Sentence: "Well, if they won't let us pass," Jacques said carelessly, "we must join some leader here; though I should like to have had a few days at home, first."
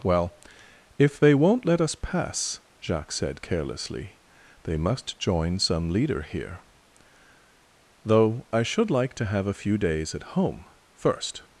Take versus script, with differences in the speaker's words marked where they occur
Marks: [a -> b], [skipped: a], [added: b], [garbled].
"Well, if they won't let us pass," Jacques said carelessly, ["we -> they] must join some leader here; though I should like to have [skipped: had] a few days at home, first."